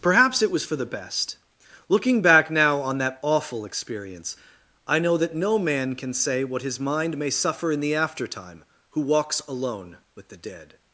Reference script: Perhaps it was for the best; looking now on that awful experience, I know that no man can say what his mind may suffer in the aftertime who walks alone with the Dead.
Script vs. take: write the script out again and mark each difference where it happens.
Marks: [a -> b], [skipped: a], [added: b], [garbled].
Perhaps it was for the best; looking [added: back] now on that awful experience, I know that no man can say what his mind may suffer in the aftertime who walks alone with the Dead.